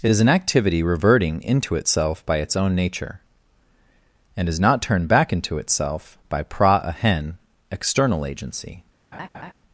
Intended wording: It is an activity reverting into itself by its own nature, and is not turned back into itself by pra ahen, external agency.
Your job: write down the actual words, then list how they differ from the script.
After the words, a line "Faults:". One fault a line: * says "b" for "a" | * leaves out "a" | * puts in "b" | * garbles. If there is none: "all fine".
It is an activity reverting into itself by its own nature, and is not turned back into itself by pra ahen, external agency.
Faults:
all fine